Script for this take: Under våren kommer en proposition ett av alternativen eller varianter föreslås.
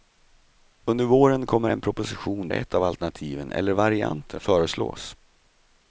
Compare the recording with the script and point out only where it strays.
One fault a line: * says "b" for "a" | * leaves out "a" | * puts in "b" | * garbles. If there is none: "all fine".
all fine